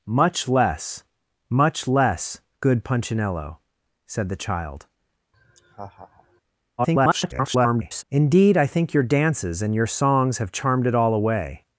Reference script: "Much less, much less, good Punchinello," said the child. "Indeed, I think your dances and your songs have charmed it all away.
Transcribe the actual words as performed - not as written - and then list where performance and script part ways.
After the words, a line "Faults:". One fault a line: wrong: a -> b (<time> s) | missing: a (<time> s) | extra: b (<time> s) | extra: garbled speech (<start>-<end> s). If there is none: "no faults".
"Much less, much less, good Punchinello," said the child. [garbled] "Indeed, I think your dances and your songs have charmed it all away.
Faults:
extra: garbled speech (6.8-8.0 s)